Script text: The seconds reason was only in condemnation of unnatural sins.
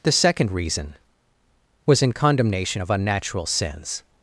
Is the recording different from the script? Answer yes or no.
yes